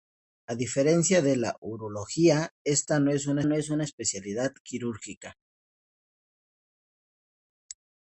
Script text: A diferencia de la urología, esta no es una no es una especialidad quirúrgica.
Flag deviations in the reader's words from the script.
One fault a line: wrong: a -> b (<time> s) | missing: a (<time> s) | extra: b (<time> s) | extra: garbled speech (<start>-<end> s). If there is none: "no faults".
no faults